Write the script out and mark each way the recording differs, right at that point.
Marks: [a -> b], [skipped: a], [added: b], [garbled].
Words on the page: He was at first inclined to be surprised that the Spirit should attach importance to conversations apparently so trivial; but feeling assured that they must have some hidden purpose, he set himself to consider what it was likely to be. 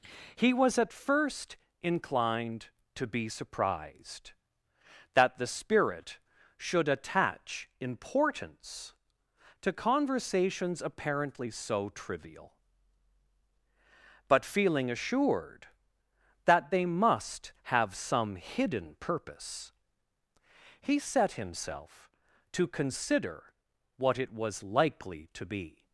He was at first inclined to be surprised that the Spirit should attach importance to conversations apparently so trivial; but feeling assured that they must have some hidden purpose, he set himself to consider what it was likely to be.